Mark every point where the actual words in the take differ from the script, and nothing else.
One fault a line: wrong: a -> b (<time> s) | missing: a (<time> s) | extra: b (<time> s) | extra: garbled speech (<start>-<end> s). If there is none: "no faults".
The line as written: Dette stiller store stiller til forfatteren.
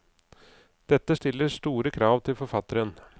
wrong: stiller -> krav (1.9 s)